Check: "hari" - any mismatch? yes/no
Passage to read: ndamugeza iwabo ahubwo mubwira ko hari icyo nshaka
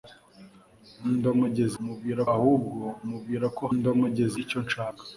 yes